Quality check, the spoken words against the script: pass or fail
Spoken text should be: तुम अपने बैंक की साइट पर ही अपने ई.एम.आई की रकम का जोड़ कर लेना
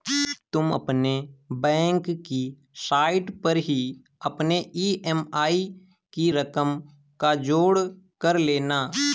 pass